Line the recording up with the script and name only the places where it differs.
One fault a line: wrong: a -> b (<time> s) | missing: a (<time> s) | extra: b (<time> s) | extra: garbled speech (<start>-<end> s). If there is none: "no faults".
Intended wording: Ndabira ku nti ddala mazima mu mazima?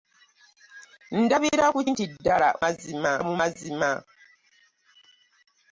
no faults